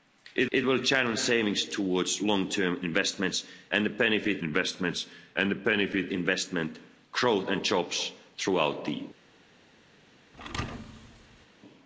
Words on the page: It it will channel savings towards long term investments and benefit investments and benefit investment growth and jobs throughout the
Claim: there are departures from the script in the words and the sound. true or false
true